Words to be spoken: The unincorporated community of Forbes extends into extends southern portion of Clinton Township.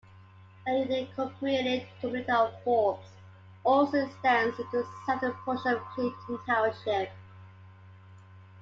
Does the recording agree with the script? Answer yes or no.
no